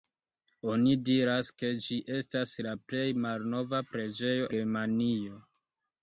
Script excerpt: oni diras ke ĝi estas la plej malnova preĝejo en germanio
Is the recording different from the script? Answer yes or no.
yes